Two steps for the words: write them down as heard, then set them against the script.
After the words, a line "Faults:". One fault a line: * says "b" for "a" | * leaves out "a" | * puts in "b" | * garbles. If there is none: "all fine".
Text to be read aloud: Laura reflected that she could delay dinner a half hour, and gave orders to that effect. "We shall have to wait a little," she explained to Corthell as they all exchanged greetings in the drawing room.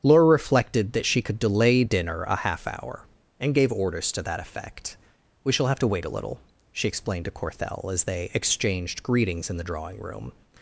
Laura reflected that she could delay dinner a half hour, and gave orders to that effect. "We shall have to wait a little," she explained to Corthell as they exchanged greetings in the drawing room.
Faults:
* leaves out "all"